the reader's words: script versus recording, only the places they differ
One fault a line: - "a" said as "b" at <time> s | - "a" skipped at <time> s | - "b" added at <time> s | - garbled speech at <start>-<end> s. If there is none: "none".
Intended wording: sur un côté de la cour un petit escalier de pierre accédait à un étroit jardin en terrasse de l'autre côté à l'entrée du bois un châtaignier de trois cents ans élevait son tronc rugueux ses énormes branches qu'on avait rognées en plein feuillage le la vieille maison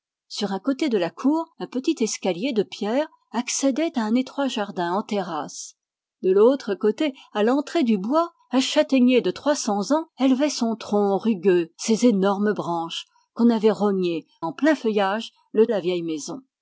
none